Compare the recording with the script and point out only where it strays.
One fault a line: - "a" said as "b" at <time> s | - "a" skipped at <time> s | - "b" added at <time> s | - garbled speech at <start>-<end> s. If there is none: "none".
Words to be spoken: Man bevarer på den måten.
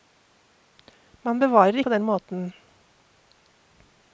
none